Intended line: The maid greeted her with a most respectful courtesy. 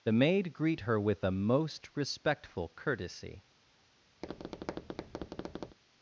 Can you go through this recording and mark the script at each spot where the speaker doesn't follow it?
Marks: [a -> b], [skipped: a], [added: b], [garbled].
The maid [greeted -> greet] her with a most respectful courtesy.